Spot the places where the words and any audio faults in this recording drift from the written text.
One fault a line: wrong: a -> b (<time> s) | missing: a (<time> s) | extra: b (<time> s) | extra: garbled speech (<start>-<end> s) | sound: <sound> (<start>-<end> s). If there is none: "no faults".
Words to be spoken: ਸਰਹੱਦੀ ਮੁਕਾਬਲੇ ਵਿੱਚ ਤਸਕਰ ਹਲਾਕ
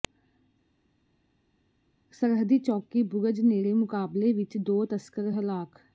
extra: ਚੌਕੀ ਬੁਰਜ ਨੇੜੇ (2.6 s)
extra: ਦੋ (4.6 s)